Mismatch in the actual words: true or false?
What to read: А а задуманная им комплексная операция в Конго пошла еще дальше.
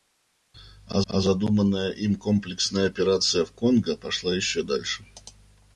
false